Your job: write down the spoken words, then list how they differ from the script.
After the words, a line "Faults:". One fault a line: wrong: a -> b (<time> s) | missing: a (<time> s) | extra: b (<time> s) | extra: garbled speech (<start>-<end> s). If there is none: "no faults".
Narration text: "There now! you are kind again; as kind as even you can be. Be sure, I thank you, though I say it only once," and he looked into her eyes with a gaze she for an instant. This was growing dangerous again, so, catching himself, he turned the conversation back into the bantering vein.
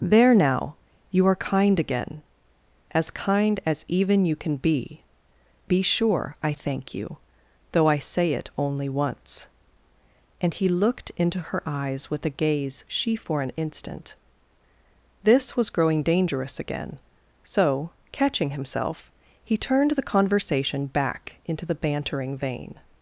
"There now! you are kind again; as kind as even you can be. Be sure, I thank you, though I say it only once," and he looked into her eyes with a gaze she for an instant. This was growing dangerous again, so, catching himself, he turned the conversation back into the bantering vein.
Faults:
no faults